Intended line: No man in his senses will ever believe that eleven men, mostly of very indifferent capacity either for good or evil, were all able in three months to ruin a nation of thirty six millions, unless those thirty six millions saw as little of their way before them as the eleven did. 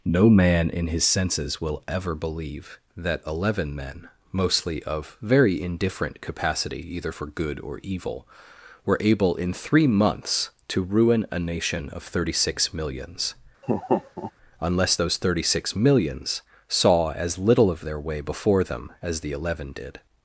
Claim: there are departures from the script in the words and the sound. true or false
true